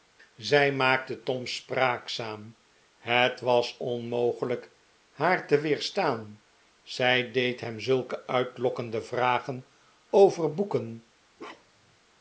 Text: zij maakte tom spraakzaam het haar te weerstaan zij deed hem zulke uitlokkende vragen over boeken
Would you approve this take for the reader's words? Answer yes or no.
no